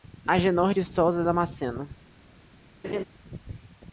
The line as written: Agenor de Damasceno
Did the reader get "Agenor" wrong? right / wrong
right